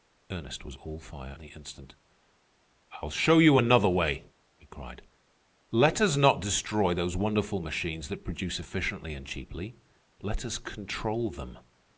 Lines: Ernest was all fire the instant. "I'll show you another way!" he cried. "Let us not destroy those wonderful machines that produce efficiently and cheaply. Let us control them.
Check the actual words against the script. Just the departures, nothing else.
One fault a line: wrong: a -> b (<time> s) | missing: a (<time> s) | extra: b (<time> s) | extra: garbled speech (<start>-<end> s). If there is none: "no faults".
no faults